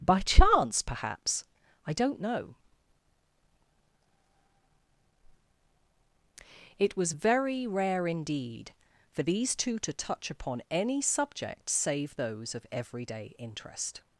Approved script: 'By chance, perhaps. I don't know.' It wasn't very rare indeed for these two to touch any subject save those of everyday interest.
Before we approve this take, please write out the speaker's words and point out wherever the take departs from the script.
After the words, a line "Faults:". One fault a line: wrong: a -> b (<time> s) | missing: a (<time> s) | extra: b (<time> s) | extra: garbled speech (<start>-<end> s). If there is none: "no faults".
'By chance, perhaps. I don't know.' It was very rare indeed for these two to touch upon any subject save those of everyday interest.
Faults:
wrong: wasn't -> was (7.0 s)
extra: upon (10.3 s)